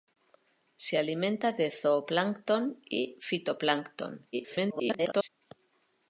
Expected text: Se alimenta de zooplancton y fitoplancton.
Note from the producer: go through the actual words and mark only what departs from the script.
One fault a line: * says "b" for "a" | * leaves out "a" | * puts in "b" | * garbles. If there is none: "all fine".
* garbles